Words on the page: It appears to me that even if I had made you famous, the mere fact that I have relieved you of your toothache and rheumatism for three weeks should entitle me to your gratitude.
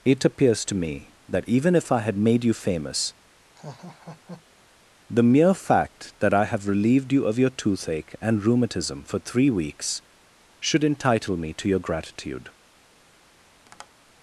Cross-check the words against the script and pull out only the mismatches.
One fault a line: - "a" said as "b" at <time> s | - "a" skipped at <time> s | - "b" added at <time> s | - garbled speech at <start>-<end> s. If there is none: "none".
none